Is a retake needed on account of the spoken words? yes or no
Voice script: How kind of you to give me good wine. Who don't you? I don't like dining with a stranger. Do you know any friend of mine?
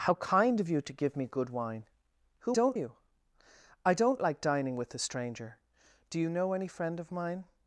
no